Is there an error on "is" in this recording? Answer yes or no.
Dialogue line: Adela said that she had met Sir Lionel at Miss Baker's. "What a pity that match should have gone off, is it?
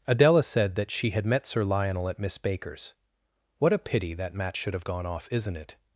yes